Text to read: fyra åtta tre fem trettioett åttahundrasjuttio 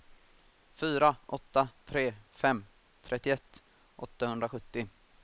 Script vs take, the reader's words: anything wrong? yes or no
no